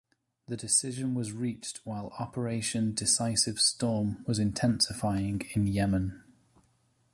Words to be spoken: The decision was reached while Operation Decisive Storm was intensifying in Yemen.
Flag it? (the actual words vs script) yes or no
no